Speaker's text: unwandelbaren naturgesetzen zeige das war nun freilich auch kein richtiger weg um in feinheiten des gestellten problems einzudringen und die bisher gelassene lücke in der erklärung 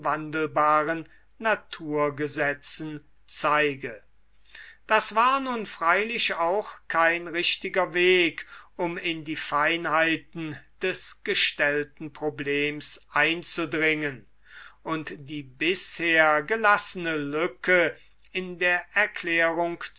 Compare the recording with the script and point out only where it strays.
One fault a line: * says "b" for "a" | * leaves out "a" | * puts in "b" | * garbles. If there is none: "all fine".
* puts in "die"